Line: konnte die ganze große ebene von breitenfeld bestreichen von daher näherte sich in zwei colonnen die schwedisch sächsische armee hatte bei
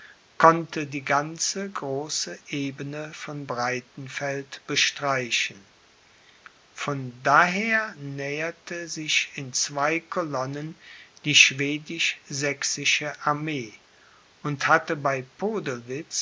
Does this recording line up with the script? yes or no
no